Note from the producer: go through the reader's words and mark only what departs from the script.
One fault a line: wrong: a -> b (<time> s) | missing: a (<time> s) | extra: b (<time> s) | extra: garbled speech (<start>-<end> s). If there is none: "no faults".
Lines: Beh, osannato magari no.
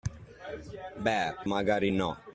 missing: osannato (1.3 s)